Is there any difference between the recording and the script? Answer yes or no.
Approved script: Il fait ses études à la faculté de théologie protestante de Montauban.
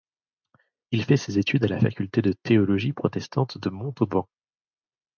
no